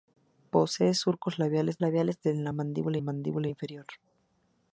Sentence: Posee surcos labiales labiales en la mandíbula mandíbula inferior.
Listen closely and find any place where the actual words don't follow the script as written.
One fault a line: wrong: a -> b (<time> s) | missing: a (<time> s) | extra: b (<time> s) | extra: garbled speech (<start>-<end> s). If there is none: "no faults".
no faults